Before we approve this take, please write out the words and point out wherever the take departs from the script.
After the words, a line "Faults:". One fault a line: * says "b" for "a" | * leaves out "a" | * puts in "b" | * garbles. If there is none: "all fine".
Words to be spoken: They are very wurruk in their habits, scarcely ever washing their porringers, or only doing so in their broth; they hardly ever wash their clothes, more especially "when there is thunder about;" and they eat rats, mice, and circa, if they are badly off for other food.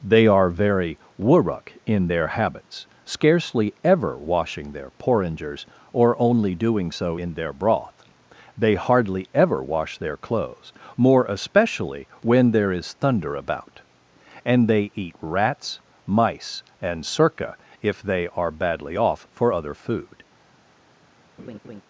They are very wurruk in their habits, scarcely ever washing their porringers, or only doing so in their broth; they hardly ever wash their clothes, more especially "when there is thunder about;" and they eat rats, mice, and circa, if they are badly off for other food.
Faults:
all fine